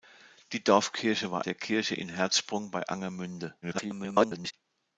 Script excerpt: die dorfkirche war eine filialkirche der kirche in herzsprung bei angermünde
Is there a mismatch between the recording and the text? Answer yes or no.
yes